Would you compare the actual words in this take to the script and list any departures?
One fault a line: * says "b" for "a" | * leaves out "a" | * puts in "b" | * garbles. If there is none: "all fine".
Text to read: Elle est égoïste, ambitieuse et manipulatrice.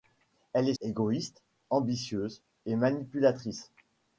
all fine